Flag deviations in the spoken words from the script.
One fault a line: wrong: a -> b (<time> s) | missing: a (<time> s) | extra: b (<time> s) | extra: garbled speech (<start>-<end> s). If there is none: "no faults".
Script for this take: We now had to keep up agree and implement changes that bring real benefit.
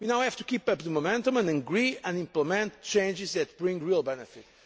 wrong: had -> have (0.2 s)
extra: the momentum and (0.8 s)